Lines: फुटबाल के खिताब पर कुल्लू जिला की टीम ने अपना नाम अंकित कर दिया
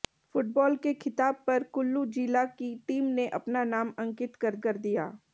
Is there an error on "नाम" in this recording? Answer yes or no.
no